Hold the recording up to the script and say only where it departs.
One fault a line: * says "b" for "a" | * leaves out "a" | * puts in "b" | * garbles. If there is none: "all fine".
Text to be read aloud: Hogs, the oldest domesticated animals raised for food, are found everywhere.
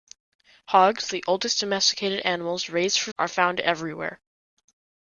* leaves out "food"